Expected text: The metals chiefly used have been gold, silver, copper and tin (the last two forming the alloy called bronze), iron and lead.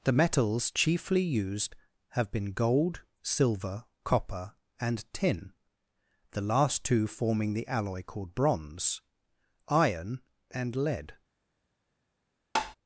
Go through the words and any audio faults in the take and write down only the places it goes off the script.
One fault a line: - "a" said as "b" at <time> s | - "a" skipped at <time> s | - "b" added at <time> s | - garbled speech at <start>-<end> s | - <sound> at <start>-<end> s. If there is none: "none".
- tap at 12.6-12.8 s